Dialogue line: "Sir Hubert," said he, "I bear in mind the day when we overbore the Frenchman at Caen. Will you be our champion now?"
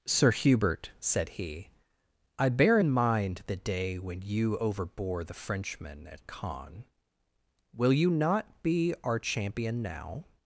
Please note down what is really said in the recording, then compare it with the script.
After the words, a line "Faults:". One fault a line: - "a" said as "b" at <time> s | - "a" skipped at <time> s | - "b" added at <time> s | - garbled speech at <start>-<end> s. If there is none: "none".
"Sir Hubert," said he, "I bear in mind the day when you overbore the Frenchman at Caen. Will you not be our champion now?"
Faults:
- "we" said as "you" at 4.2 s
- "not" added at 8.1 s